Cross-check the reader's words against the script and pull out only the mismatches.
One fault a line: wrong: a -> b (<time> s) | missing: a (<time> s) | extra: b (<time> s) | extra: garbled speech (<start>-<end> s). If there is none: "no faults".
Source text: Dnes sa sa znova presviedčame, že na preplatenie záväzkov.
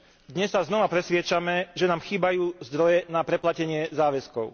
missing: sa (0.6 s)
extra: nám chýbajú zdroje (1.9 s)